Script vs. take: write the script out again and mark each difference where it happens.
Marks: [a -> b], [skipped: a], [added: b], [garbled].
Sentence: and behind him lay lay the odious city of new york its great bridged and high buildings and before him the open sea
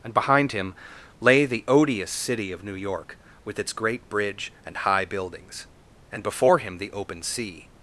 and behind him lay [skipped: lay] the odious city of new york [added: with] its great [bridged -> bridge] and high buildings and before him the open sea